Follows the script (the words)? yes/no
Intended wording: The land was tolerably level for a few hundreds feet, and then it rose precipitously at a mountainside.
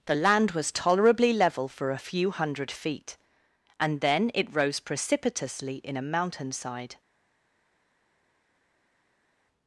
no